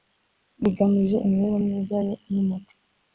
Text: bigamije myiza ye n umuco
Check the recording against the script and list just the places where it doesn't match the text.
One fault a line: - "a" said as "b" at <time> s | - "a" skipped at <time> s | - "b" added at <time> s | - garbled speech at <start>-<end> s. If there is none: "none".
- "imibereho" added at 1.2 s